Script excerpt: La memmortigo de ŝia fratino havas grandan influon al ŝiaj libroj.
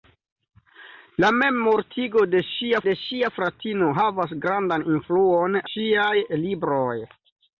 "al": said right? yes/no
no